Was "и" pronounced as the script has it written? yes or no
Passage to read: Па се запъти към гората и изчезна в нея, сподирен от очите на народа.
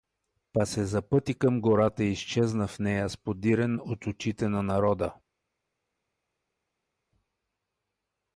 yes